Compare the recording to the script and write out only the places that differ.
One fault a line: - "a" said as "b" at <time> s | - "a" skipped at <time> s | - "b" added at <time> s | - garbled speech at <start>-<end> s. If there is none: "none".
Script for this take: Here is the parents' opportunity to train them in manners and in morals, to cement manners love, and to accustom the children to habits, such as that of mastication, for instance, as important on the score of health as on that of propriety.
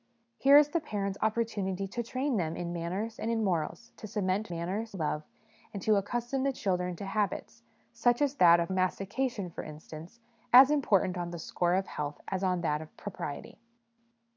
none